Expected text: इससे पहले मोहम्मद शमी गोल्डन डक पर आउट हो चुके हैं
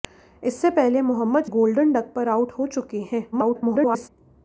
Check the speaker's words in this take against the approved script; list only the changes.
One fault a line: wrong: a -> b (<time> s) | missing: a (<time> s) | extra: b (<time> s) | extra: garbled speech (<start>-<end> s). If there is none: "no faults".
missing: शमी (1.4 s)
extra: garbled speech (3.3-4.1 s)